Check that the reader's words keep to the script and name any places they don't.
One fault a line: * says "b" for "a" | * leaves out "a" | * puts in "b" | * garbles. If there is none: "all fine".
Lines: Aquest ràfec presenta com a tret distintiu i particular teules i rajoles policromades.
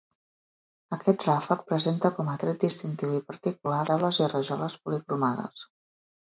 all fine